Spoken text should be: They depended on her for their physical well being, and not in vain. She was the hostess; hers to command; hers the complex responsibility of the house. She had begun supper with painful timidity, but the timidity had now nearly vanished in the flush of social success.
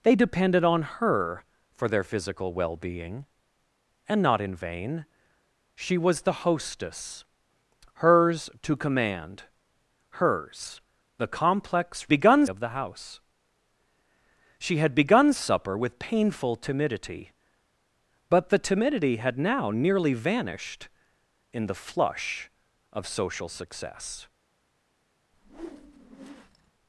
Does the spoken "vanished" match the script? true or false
true